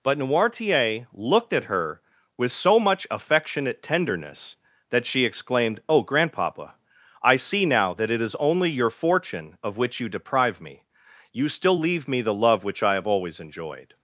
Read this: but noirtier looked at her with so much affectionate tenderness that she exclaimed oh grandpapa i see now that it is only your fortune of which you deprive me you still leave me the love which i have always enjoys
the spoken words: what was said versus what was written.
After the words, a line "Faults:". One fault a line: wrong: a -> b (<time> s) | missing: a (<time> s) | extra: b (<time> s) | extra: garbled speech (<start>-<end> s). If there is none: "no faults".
but noirtier looked at her with so much affectionate tenderness that she exclaimed oh grandpapa i see now that it is only your fortune of which you deprive me you still leave me the love which i have always enjoyed
Faults:
wrong: enjoys -> enjoyed (13.4 s)